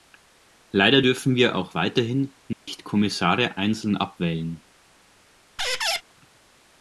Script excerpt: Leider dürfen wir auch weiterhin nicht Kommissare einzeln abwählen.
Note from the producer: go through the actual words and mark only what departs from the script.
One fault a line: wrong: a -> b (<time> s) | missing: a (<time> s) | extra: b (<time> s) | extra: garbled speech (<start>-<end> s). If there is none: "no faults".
no faults